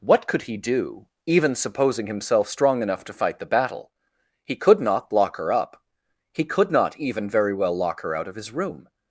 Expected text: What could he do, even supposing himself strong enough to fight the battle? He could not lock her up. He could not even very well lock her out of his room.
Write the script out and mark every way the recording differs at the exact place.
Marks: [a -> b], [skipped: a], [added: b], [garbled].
What could he do, even supposing himself strong enough to fight the battle? He could not lock her up. He could not even very well lock her out of his room.